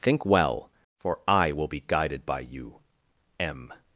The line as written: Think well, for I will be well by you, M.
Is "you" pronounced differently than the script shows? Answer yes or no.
no